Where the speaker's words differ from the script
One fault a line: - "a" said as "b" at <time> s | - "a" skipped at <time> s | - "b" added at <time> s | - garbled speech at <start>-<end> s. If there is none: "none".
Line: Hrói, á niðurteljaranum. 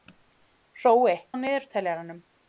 none